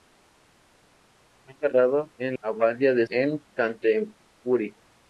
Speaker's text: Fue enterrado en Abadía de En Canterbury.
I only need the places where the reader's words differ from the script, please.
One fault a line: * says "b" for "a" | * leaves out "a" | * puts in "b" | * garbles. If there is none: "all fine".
all fine